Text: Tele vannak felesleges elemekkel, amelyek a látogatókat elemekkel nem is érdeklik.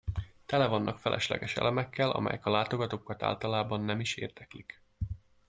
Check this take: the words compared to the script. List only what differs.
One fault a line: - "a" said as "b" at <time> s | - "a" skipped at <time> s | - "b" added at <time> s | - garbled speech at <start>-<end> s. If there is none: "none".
- "elemekkel" said as "általában" at 3.2 s